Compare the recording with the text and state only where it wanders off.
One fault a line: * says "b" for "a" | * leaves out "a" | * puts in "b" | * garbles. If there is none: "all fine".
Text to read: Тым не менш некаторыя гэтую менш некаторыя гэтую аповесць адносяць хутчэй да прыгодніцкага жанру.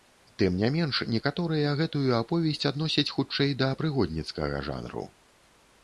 * leaves out "менш некаторыя гэтую"